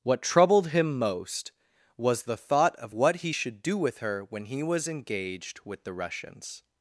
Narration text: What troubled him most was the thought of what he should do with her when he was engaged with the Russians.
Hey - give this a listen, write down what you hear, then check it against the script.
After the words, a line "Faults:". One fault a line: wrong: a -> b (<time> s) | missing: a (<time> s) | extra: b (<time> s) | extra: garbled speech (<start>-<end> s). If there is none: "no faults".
What troubled him most was the thought of what he should do with her when he was engaged with the Russians.
Faults:
no faults